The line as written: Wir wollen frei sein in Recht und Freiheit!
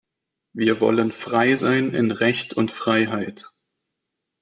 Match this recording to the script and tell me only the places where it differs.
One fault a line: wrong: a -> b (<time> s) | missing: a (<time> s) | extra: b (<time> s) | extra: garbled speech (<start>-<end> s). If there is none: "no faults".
no faults